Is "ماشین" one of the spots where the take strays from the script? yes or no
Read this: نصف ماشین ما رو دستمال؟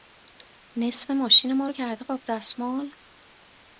no